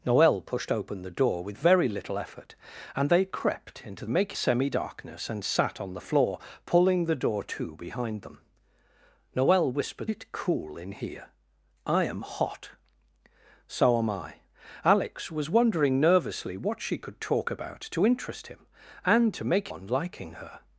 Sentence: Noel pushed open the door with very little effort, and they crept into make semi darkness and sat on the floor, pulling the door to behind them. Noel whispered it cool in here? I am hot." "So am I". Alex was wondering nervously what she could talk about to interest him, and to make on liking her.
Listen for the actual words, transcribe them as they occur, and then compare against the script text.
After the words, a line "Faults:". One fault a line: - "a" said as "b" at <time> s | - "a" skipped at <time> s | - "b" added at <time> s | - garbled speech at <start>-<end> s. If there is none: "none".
Noel pushed open the door with very little effort, and they crept into make semi darkness and sat on the floor, pulling the door to behind them. Noel whispered it cool in here? I am hot." "So am I". Alex was wondering nervously what she could talk about to interest him, and to make on liking her.
Faults:
none